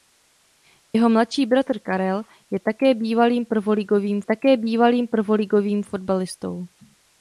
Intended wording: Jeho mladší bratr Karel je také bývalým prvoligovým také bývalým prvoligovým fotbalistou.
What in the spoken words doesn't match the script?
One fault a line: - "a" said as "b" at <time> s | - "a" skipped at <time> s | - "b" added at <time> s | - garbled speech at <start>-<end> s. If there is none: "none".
none